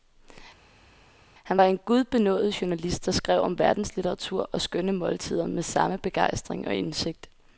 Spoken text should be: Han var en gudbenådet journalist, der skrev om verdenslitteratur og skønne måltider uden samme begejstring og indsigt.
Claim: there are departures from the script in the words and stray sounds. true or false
true